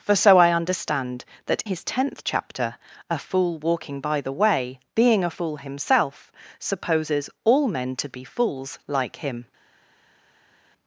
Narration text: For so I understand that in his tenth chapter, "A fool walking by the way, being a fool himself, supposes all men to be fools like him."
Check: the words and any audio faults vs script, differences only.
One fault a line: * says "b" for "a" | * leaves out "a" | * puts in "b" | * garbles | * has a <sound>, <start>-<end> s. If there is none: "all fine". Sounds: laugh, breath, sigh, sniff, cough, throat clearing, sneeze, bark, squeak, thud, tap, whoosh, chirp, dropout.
* leaves out "in"